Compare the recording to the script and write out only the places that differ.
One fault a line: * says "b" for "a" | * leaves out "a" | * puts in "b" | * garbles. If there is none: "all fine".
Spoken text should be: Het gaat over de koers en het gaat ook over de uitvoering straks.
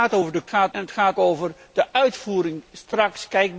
* says "gaat" for "koers"
* leaves out "ook"